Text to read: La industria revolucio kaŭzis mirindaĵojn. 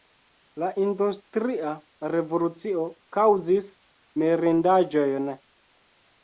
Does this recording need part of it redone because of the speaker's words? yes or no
no